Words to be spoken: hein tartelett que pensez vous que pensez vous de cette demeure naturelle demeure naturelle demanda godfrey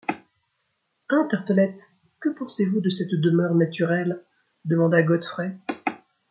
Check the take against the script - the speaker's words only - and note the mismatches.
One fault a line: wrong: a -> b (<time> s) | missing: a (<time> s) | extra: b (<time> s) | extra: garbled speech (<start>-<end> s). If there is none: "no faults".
missing: que pensez vous (2.8 s)
missing: demeure naturelle (4.2 s)